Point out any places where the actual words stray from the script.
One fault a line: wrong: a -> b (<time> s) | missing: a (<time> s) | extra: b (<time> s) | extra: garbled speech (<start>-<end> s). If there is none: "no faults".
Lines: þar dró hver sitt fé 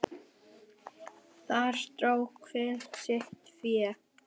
no faults